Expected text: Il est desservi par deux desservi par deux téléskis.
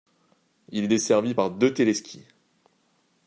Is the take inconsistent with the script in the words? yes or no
yes